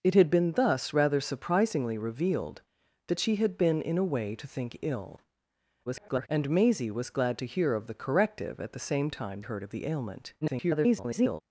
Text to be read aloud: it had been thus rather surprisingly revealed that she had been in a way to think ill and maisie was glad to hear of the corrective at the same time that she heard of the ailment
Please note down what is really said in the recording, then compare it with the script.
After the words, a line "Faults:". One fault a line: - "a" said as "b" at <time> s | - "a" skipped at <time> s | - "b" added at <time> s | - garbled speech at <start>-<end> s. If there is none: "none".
it had been thus rather surprisingly revealed that she had been in a way to think ill [garbled] and maisie was glad to hear of the corrective at the same time heard of the ailment [garbled]
Faults:
- garbled speech at 5.9-6.3 s
- "that she" skipped at 9.4 s
- garbled speech at 10.4-11.4 s